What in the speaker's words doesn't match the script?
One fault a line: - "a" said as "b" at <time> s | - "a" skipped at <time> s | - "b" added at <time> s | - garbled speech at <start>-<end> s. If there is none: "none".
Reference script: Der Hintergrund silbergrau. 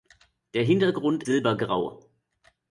none